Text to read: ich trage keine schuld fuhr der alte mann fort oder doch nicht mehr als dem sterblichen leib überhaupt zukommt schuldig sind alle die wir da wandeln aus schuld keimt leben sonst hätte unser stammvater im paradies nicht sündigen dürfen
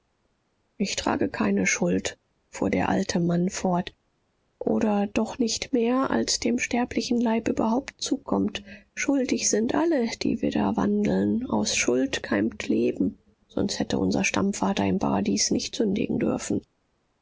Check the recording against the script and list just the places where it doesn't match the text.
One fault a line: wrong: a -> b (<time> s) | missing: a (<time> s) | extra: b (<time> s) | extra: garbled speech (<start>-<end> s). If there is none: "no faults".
no faults